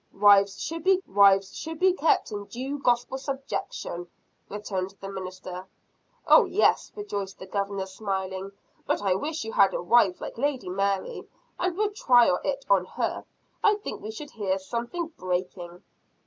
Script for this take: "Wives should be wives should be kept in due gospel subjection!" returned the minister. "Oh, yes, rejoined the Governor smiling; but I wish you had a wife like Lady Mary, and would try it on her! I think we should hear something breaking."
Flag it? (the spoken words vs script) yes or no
no